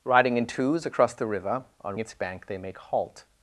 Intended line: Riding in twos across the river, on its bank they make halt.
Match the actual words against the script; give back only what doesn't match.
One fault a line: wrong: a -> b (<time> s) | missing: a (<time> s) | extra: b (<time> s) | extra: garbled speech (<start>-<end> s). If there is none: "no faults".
no faults